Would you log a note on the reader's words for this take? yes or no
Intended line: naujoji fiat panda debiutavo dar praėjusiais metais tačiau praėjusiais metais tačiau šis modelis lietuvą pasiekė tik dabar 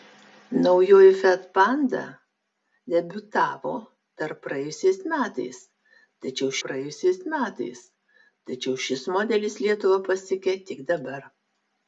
no